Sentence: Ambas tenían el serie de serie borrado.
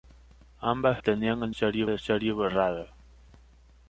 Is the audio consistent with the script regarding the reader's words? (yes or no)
yes